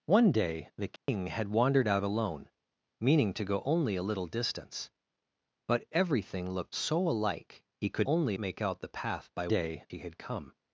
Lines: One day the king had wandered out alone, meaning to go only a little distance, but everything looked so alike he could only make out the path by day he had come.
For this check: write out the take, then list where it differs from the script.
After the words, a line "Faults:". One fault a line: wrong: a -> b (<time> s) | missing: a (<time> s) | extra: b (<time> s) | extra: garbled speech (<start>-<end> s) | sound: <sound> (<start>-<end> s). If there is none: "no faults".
One day the king had wandered out alone, meaning to go only a little distance, but everything looked so alike he could only make out the path by day he had come.
Faults:
sound: dropout (1.0-1.1 s)